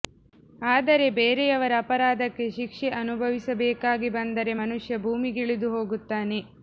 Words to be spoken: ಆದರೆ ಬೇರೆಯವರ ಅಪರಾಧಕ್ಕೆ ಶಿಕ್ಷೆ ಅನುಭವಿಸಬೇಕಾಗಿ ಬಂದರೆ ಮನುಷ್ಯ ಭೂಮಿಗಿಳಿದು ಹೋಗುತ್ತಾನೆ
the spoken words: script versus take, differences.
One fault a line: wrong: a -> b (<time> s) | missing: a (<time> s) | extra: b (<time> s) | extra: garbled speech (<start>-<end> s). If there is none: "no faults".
no faults